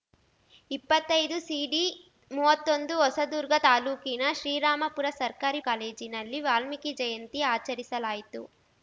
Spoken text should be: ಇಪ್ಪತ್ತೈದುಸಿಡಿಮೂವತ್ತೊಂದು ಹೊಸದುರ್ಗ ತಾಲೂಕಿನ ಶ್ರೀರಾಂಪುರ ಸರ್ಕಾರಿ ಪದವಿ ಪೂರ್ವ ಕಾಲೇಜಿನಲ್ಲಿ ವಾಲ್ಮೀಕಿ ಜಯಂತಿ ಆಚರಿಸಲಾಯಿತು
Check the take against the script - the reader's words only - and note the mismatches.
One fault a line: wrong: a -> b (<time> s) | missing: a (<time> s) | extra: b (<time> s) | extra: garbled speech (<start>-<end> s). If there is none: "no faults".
missing: ಪದವಿ ಪೂರ್ವ (5.6 s)